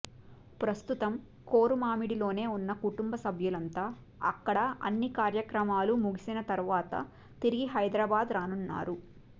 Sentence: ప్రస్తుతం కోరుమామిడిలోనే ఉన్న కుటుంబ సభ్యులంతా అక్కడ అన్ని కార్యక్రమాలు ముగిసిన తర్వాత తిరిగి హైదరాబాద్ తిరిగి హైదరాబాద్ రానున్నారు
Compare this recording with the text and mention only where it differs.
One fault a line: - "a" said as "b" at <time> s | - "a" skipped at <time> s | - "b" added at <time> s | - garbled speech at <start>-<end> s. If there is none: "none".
- "తిరిగి హైదరాబాద్" skipped at 8.3 s